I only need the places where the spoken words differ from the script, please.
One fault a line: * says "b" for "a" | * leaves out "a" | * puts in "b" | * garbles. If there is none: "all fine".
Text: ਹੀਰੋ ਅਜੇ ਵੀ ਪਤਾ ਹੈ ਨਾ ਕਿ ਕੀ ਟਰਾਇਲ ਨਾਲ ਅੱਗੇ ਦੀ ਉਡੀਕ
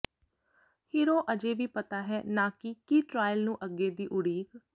* says "ਨੂੰ" for "ਨਾਲ"